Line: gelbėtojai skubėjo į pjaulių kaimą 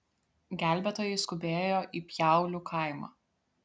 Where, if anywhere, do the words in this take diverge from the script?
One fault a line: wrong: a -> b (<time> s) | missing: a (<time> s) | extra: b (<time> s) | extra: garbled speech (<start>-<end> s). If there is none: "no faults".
no faults